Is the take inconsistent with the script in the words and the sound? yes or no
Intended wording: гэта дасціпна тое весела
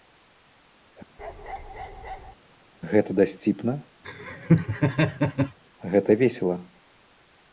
yes